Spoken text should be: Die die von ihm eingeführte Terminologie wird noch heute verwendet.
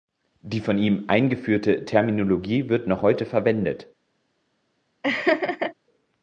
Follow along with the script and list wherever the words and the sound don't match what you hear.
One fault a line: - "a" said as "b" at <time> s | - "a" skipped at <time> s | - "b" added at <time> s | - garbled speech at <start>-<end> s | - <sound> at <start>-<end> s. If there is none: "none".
- "die" skipped at 0.6 s
- laugh at 5.0-5.7 s